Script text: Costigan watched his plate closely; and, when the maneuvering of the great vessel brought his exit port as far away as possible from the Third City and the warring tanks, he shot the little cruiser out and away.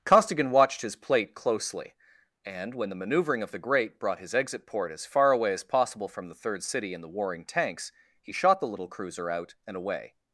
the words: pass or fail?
fail